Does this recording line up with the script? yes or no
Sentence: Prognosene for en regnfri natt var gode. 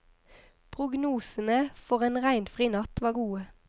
yes